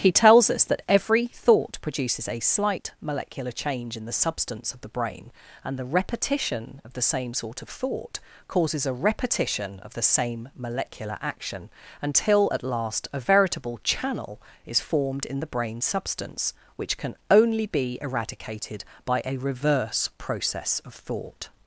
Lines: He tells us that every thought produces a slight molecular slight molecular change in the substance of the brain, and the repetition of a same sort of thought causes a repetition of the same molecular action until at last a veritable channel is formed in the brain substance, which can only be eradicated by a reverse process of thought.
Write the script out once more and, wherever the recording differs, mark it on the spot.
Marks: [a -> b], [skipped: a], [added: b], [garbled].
He tells us that every thought produces a slight molecular [skipped: slight molecular] change in the substance of the brain, and the repetition of [a -> the] same sort of thought causes a repetition of the same molecular action until at last a veritable channel is formed in the brain substance, which can only be eradicated by a reverse process of thought.